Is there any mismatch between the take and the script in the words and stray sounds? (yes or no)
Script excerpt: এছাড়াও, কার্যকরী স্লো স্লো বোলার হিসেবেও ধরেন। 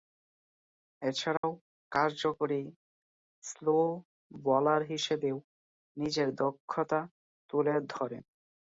yes